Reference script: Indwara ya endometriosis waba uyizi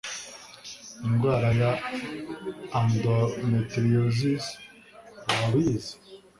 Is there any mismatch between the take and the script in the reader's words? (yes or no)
no